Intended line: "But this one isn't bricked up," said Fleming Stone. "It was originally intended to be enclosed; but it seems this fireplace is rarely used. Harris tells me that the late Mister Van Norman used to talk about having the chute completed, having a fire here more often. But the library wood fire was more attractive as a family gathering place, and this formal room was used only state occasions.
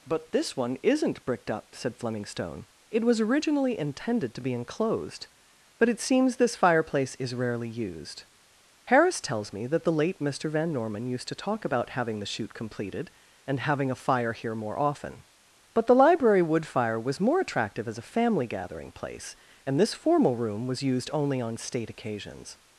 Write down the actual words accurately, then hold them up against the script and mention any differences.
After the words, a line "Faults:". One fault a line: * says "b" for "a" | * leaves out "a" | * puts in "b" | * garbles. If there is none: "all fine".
"But this one isn't bricked up," said Fleming Stone. "It was originally intended to be enclosed; but it seems this fireplace is rarely used. Harris tells me that the late Mister Van Norman used to talk about having the chute completed, and having a fire here more often. But the library wood fire was more attractive as a family gathering place, and this formal room was used only on state occasions.
Faults:
* puts in "and"
* puts in "on"